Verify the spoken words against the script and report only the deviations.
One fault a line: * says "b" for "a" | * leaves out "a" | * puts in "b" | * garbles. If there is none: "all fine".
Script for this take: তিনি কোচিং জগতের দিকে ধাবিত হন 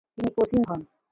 * leaves out "জগতের দিকে ধাবিত"